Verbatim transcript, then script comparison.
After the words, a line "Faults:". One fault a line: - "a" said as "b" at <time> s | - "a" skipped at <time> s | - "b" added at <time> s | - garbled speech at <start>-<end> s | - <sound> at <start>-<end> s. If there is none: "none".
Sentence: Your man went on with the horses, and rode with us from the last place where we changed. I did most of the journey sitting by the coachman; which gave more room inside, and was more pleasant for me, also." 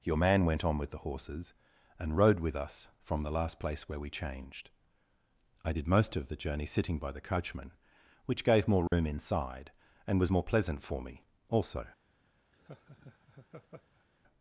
Your man went on with the horses, and rode with us from the last place where we changed. I did most of the journey sitting by the coachman; which gave more room inside, and was more pleasant for me, also."
Faults:
- dropout at 8.9-8.9 s
- laugh at 12.5-14.1 s